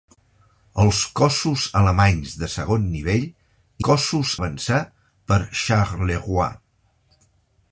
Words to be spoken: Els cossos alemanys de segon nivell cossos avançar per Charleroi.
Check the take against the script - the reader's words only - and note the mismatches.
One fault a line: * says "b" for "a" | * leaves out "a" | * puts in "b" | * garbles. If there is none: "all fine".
all fine